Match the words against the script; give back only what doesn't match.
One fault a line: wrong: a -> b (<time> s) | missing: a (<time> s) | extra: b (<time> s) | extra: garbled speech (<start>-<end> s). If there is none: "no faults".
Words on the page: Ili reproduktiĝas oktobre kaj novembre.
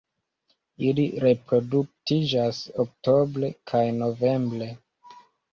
no faults